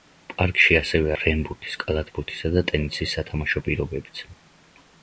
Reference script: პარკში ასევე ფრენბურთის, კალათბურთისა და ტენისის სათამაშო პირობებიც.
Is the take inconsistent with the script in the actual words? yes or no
no